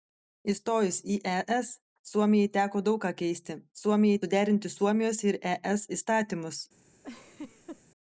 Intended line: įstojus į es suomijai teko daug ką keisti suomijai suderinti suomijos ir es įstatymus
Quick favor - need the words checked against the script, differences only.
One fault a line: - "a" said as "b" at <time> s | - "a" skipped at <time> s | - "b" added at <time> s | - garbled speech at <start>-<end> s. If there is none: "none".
none